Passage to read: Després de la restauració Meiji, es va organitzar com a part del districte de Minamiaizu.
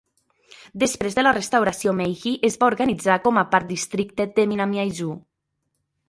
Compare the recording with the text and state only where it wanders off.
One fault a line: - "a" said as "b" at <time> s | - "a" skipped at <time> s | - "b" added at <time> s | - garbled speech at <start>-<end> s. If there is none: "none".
- "del" skipped at 3.7 s